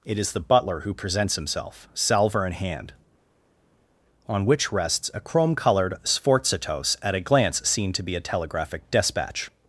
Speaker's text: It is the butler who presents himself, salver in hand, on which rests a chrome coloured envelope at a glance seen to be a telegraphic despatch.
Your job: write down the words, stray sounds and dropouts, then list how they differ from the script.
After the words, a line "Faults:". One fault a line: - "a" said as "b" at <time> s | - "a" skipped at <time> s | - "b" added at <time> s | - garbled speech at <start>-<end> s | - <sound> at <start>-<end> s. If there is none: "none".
It is the butler who presents himself, salver in hand, on which rests a chrome coloured sforzatos at a glance seen to be a telegraphic despatch.
Faults:
- "envelope" said as "sforzatos" at 6.0 s